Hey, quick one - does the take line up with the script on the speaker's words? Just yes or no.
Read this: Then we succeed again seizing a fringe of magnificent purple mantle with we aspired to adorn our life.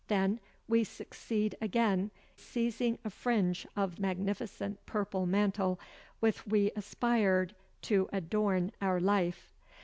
yes